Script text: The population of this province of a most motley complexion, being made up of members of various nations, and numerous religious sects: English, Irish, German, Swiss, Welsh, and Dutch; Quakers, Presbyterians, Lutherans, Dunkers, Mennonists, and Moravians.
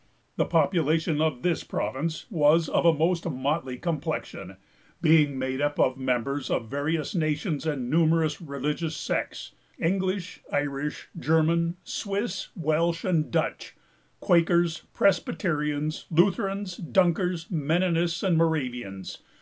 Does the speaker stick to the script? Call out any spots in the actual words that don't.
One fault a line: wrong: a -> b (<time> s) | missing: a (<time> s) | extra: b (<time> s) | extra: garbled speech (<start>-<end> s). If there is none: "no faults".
extra: was (2.3 s)